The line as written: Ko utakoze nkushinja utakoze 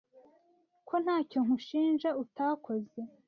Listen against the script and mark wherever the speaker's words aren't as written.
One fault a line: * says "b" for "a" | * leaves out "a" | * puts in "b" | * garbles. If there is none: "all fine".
* says "ntacyo" for "utakoze"